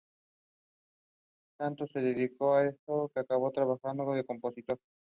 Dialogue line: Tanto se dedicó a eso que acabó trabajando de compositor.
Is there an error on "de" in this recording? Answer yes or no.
no